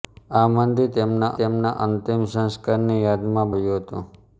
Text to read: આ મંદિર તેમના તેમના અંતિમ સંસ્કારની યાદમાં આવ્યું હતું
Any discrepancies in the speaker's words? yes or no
no